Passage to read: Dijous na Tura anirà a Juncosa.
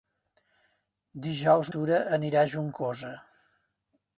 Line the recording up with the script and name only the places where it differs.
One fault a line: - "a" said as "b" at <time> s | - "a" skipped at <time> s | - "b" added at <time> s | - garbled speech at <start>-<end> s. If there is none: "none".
- "na" skipped at 1.7 s